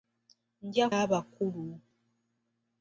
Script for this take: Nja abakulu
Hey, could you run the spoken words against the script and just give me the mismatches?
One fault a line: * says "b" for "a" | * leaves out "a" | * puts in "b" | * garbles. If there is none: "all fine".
all fine